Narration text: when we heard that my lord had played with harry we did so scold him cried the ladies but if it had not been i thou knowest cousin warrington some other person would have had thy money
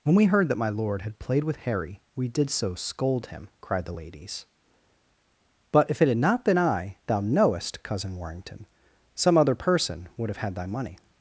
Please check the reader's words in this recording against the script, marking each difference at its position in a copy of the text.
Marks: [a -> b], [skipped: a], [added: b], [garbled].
when we heard that my lord had played with harry we did so scold him cried the ladies but if it had not been i thou knowest cousin warrington some other person would have had thy money